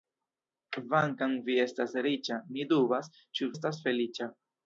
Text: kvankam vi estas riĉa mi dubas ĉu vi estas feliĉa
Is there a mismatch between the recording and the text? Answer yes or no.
yes